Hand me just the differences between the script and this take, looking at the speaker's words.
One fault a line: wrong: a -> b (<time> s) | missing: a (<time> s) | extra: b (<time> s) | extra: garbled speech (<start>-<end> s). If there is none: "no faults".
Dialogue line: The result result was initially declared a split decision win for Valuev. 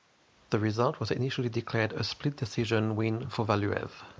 missing: result (1.0 s)